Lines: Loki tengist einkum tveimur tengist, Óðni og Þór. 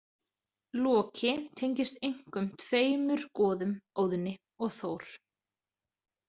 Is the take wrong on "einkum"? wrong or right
right